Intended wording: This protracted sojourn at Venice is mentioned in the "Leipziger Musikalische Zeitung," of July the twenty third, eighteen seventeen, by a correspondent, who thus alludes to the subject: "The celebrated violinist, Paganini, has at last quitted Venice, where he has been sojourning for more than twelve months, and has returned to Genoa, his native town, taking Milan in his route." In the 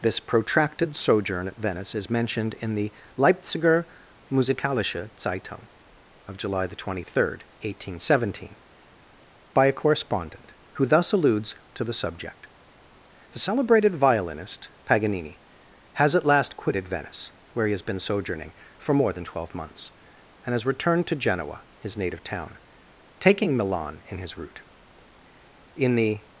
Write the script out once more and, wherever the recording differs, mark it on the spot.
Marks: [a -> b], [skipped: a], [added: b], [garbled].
This protracted sojourn at Venice is mentioned in the "Leipziger Musikalische Zeitung," of July the twenty third, eighteen seventeen, by a correspondent, who thus alludes to the subject: "The celebrated violinist, Paganini, has at last quitted Venice, where he has been sojourning for more than twelve months, and has returned to Genoa, his native town, taking Milan in his route." In the